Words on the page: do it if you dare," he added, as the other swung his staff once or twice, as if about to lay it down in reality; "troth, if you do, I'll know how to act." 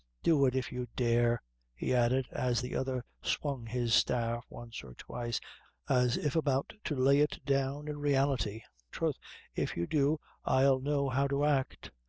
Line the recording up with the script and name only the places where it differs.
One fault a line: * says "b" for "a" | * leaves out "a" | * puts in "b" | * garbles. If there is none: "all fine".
all fine